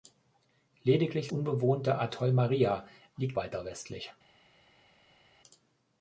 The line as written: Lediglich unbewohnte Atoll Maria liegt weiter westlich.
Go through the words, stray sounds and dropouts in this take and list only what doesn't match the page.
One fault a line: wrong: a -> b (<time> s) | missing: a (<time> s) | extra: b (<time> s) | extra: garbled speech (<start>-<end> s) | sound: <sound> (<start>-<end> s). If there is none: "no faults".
no faults